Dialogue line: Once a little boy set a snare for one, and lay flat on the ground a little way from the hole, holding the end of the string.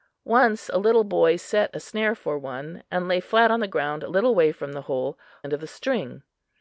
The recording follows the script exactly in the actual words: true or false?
false